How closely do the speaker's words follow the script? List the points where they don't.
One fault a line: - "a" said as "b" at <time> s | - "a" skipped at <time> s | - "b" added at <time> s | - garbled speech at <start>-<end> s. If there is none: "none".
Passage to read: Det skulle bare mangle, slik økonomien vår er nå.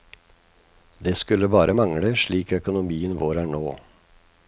none